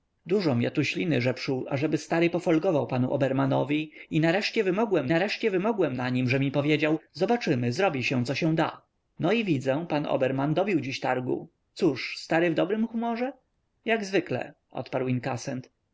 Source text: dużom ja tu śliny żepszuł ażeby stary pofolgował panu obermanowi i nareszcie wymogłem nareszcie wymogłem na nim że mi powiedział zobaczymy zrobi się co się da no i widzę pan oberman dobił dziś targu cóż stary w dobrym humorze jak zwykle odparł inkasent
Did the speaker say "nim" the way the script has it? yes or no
yes